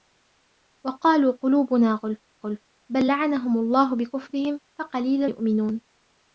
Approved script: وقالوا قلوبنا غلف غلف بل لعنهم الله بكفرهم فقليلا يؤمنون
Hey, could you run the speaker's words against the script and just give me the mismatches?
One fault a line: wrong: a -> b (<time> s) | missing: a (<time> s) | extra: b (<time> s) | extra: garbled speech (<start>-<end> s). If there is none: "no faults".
no faults